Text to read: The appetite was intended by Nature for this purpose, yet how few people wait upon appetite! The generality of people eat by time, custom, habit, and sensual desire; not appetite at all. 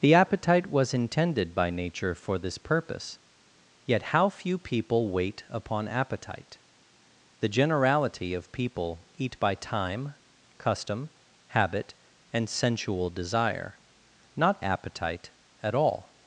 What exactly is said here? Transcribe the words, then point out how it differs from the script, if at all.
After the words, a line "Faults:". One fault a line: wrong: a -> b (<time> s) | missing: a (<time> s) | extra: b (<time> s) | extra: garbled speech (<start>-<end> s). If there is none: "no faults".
The appetite was intended by Nature for this purpose, yet how few people wait upon appetite! The generality of people eat by time, custom, habit, and sensual desire; not appetite at all.
Faults:
no faults